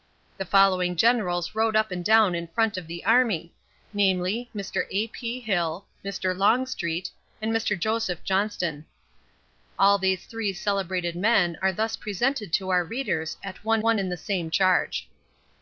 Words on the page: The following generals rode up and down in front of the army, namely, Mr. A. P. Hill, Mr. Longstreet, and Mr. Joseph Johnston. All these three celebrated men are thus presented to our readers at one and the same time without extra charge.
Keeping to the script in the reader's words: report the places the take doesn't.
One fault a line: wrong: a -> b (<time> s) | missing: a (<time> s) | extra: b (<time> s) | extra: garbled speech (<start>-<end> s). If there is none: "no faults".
extra: one (13.8 s)
missing: time without extra (14.5 s)